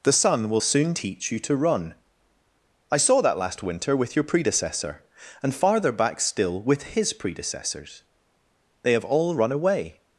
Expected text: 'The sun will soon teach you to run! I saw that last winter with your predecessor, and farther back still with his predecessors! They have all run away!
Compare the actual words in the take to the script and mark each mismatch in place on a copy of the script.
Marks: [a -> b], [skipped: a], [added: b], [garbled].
'The sun will soon teach you to run! I saw that last winter with your predecessor, and farther back still with his predecessors! They have all run away!